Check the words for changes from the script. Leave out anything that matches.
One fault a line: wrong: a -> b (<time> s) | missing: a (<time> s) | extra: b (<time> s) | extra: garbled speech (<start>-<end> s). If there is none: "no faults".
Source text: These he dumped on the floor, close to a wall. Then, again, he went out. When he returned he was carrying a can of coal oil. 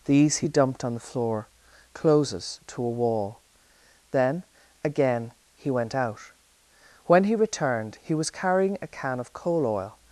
wrong: close -> closes (1.9 s)